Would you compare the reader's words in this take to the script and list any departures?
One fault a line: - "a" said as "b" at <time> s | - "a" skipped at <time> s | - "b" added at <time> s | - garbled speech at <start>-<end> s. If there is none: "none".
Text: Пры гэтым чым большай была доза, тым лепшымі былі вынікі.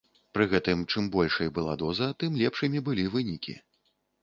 none